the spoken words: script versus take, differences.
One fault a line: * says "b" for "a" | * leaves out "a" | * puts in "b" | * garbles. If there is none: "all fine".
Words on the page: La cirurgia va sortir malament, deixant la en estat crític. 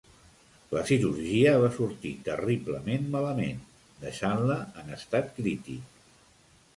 * puts in "terriblement"